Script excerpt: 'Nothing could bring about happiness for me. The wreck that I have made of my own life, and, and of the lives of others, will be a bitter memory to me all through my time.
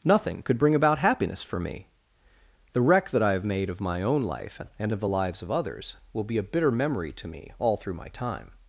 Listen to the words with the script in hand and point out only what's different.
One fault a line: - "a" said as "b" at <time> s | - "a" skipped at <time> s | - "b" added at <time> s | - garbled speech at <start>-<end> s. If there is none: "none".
- "and" skipped at 4.9 s